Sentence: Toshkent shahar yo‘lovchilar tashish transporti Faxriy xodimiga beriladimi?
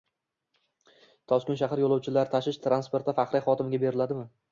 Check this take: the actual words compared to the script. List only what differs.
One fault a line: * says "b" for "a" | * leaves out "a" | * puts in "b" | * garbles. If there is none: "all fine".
all fine